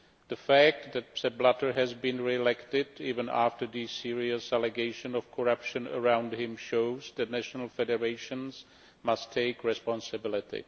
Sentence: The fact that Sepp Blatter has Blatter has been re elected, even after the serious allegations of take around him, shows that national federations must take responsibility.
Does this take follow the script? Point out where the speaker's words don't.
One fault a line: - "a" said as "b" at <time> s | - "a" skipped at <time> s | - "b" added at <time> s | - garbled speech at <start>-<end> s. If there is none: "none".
- "Blatter has" skipped at 1.9 s
- "take" said as "corruption" at 5.3 s